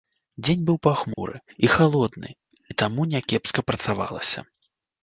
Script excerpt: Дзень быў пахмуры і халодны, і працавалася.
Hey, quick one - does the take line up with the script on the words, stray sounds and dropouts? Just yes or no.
no